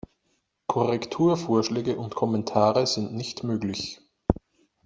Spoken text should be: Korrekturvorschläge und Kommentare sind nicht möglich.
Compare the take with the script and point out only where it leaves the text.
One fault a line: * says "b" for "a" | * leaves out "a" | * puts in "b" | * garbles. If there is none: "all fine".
all fine